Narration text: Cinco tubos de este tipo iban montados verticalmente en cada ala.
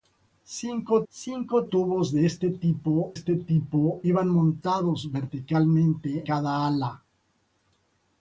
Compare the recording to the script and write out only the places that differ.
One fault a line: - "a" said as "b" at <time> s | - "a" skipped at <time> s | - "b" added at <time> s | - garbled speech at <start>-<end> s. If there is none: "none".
- "cinco" added at 1.1 s
- "este tipo" added at 3.1 s
- "en" skipped at 6.2 s